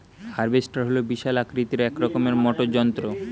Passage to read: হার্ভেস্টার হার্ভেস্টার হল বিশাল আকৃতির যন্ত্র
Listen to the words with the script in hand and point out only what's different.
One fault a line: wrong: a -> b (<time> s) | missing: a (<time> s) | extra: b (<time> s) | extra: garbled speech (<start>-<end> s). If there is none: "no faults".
missing: হার্ভেস্টার (0.8 s)
extra: এক রকমের মোটর (1.8 s)